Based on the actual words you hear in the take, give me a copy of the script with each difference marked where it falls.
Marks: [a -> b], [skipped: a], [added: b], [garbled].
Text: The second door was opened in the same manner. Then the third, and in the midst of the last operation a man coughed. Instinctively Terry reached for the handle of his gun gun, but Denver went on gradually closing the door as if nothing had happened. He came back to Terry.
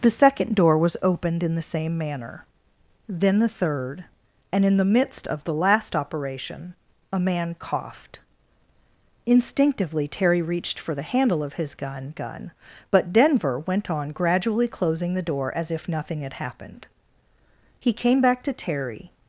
The second door was opened in the same manner. Then the third, and in the midst of the last operation a man coughed. Instinctively Terry reached for the handle of his gun gun, but Denver went on gradually closing the door as if nothing had happened. He came back to Terry.